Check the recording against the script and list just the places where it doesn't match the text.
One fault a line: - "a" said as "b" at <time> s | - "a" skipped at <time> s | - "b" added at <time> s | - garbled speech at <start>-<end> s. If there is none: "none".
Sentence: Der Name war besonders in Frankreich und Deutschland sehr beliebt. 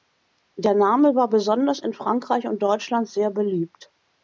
none